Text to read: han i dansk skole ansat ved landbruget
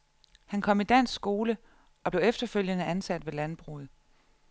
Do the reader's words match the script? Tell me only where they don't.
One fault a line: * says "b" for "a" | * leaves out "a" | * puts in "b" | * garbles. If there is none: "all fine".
* puts in "kom"
* puts in "og blev efterfølgende"